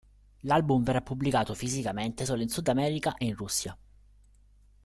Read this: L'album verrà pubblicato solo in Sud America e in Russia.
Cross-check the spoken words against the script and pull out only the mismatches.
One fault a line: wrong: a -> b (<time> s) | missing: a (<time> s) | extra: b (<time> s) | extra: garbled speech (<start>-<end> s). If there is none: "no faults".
extra: fisicamente (1.5 s)